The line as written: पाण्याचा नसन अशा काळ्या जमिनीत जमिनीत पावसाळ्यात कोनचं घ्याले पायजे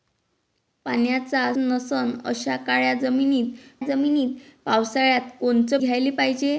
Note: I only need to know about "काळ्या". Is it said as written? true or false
true